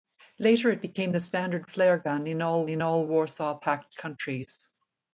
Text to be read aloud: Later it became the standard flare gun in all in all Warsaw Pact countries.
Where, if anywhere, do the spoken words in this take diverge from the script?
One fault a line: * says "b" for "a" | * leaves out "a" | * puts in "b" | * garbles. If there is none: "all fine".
all fine